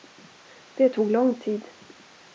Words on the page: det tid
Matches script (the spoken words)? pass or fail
fail